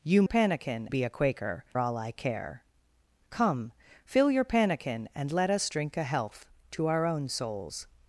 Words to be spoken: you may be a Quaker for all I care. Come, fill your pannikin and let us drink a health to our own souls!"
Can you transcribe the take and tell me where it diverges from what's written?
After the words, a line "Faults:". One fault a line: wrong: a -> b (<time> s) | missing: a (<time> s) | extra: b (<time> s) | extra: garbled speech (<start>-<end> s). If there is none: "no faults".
you pannikin be a Quaker all I care. Come, fill your pannikin and let us drink a health to our own souls!"
Faults:
wrong: may -> pannikin (0.3 s)
missing: for (1.6 s)